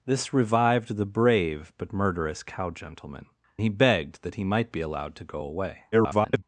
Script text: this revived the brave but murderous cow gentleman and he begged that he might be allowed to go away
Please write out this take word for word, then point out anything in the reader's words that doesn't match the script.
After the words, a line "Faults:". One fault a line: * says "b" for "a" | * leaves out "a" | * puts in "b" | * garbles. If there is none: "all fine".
this revived the brave but murderous cow gentleman he begged that he might be allowed to go away [garbled]
Faults:
* leaves out "and"
* garbles